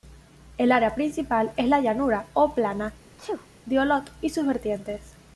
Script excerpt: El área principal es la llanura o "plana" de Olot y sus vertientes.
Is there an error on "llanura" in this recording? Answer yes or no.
no